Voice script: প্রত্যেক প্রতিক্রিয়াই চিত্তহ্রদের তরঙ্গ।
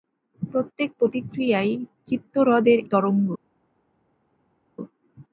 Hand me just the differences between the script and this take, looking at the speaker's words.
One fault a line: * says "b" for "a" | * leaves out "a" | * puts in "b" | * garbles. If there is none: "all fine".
all fine